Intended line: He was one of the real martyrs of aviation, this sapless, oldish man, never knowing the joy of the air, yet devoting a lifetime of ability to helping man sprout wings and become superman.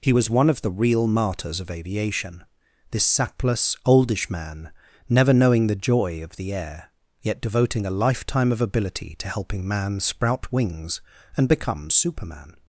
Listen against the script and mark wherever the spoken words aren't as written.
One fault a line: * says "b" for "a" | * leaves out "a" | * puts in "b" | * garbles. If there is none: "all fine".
all fine